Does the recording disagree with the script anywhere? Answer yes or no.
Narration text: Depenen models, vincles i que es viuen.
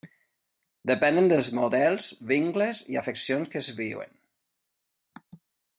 yes